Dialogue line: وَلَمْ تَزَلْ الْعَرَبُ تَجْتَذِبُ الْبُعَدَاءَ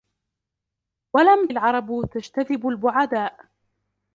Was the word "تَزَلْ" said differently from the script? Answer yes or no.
yes